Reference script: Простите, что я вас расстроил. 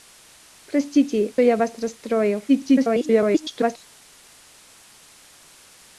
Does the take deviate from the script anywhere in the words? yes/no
yes